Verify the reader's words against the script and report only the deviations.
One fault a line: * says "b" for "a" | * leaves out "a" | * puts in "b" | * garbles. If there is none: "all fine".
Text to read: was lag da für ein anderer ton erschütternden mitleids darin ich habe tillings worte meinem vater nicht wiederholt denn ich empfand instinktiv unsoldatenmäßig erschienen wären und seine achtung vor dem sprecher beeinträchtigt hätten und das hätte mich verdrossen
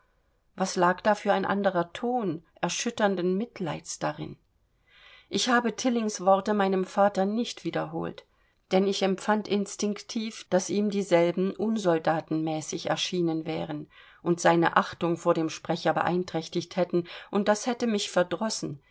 * puts in "daß ihm dieselben"